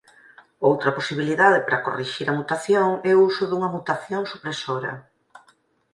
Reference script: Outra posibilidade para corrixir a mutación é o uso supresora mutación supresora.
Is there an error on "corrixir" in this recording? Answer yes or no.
no